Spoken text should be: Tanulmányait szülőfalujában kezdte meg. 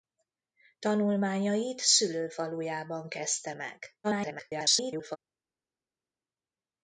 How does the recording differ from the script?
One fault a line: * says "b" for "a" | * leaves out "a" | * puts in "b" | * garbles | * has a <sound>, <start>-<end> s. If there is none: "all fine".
* garbles